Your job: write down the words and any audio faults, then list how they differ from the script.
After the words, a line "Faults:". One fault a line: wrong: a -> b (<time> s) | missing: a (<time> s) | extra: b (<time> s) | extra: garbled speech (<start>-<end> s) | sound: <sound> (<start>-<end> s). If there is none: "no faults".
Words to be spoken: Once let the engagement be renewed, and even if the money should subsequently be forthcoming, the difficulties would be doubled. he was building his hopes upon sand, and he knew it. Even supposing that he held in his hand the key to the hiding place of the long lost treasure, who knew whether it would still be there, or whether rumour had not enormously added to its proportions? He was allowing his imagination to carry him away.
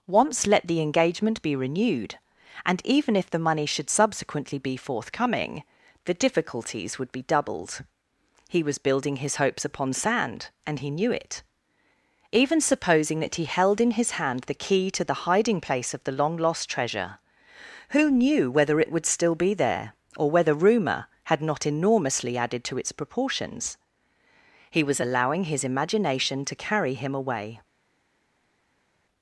Once let the engagement be renewed, and even if the money should subsequently be forthcoming, the difficulties would be doubled. he was building his hopes upon sand, and he knew it. Even supposing that he held in his hand the key to the hiding place of the long lost treasure, who knew whether it would still be there, or whether rumour had not enormously added to its proportions? He was allowing his imagination to carry him away.
Faults:
no faults